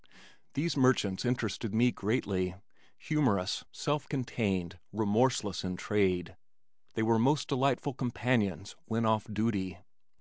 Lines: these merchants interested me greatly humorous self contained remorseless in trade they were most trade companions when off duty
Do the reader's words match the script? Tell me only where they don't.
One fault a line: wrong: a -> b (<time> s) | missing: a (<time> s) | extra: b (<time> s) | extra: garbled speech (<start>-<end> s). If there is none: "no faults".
wrong: trade -> delightful (7.5 s)